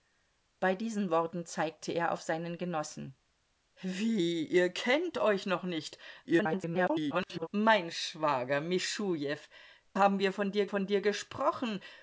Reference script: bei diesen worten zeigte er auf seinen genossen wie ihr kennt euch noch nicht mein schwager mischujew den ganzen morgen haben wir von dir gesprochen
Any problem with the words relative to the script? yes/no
yes